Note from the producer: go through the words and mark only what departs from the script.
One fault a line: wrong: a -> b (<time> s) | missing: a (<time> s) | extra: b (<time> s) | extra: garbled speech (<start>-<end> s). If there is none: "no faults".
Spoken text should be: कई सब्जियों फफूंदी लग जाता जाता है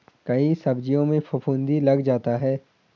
extra: में (1.1 s)
missing: जाता (2.4 s)